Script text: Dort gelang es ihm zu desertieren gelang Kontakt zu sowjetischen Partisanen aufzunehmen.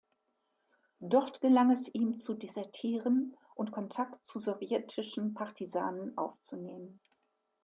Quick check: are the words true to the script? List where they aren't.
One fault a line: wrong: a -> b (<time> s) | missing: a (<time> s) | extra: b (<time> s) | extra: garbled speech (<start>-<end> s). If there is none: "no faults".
wrong: gelang -> und (3.5 s)